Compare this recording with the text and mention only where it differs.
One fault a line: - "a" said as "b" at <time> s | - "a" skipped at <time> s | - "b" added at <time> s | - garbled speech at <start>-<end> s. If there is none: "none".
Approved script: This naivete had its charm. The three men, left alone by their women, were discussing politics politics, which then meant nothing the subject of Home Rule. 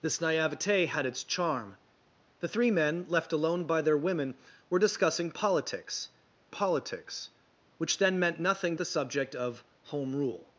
none